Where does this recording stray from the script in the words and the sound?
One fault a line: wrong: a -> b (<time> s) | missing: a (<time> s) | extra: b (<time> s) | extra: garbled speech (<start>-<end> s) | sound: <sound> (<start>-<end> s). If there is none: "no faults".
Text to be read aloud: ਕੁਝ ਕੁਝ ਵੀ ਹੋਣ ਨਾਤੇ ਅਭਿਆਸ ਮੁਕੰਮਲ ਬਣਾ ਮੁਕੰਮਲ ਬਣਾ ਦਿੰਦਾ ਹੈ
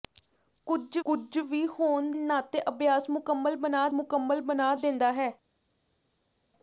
no faults